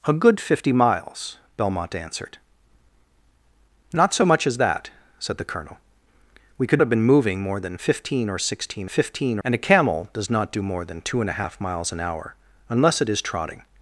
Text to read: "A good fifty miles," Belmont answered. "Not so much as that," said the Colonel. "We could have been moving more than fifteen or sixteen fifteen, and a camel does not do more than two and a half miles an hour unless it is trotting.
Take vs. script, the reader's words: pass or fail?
pass